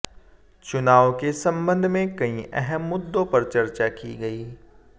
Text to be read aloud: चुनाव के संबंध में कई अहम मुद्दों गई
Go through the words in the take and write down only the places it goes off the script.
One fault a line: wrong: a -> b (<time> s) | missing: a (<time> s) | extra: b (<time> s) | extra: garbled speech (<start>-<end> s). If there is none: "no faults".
extra: पर चर्चा की (3.2 s)